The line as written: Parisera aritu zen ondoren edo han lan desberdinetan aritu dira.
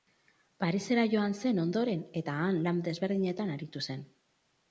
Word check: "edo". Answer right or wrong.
wrong